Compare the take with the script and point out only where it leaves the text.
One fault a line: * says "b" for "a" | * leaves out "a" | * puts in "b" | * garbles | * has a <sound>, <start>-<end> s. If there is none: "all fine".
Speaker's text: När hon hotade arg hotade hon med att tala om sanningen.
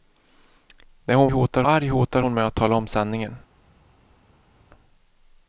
all fine